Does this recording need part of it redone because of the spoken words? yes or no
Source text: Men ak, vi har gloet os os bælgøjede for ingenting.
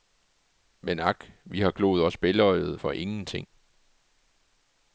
yes